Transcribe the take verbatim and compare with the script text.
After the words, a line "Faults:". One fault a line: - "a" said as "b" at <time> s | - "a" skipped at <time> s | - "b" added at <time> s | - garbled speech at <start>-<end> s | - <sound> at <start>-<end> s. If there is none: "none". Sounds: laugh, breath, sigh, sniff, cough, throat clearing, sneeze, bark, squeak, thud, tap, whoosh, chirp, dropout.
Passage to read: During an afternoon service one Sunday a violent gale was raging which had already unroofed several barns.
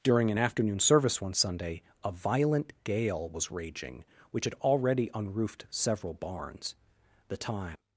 During an afternoon service one Sunday a violent gale was raging which had already unroofed several barns. The time
Faults:
- "The time" added at 7.3 s